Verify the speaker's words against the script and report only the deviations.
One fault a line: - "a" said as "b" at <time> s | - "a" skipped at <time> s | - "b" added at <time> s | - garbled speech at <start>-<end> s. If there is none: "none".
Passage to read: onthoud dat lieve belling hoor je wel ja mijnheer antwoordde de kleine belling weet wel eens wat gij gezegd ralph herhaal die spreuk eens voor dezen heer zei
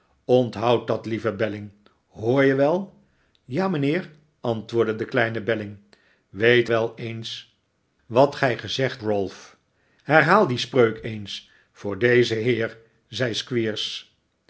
none